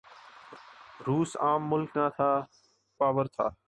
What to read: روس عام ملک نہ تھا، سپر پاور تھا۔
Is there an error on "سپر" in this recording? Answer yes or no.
yes